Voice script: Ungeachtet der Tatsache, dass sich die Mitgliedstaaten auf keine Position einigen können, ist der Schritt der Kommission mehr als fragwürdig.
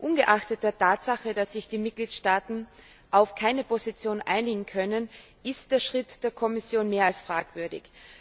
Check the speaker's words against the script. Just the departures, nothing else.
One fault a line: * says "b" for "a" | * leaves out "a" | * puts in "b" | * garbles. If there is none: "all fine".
all fine